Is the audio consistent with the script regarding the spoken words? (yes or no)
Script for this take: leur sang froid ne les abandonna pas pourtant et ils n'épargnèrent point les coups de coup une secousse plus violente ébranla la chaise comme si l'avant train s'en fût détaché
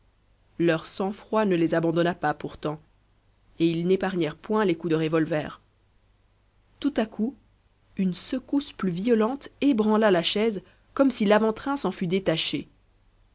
no